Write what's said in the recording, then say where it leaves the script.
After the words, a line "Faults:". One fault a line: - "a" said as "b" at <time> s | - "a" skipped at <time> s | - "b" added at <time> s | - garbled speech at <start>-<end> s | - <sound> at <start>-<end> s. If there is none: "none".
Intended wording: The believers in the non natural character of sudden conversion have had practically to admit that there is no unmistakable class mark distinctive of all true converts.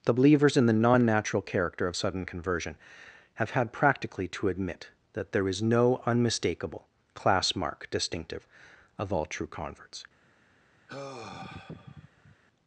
The believers in the non natural character of sudden conversion have had practically to admit that there is no unmistakable class mark distinctive of all true converts.
Faults:
- sigh at 10.9-12.4 s